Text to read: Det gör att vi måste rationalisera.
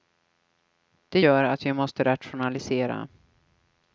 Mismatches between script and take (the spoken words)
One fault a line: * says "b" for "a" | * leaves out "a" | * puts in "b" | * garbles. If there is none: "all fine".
all fine